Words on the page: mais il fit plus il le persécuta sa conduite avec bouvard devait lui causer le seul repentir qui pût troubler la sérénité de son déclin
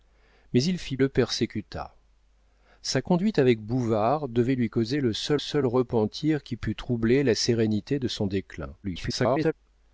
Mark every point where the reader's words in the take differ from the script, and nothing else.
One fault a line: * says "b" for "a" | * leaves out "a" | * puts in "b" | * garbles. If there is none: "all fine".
* leaves out "plus il"
* puts in "seul"
* garbles